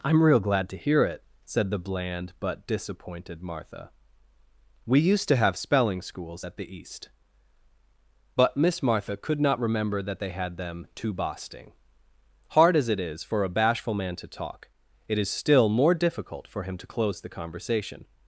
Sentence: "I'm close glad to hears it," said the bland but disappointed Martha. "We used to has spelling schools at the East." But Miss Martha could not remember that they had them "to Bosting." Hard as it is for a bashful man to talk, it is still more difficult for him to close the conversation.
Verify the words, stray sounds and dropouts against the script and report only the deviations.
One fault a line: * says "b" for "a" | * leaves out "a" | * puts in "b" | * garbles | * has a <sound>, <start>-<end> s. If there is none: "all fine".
* says "real" for "close"
* says "hear" for "hears"
* says "have" for "has"